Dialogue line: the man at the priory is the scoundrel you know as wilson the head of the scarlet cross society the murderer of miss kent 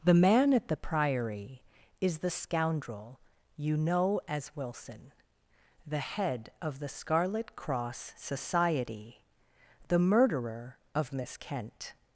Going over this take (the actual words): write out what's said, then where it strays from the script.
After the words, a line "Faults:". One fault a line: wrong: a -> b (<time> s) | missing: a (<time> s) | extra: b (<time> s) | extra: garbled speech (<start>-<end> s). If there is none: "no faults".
the man at the priory is the scoundrel you know as wilson the head of the scarlet cross society the murderer of miss kent
Faults:
no faults